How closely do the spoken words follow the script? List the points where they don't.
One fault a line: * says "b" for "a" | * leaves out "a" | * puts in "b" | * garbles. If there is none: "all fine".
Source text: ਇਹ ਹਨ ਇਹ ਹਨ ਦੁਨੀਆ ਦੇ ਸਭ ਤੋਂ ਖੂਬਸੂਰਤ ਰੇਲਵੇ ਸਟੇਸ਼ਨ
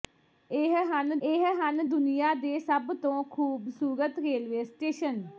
all fine